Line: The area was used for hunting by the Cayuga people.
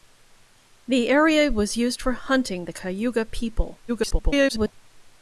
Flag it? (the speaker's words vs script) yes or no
yes